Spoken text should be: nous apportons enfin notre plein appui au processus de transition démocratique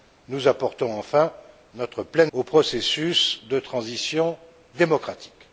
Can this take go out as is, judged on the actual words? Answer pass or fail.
fail